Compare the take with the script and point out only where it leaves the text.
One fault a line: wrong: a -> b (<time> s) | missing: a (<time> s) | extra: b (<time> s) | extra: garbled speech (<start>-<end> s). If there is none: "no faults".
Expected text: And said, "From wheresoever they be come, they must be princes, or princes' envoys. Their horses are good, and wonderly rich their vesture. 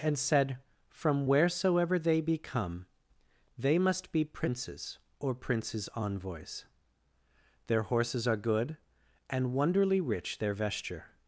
no faults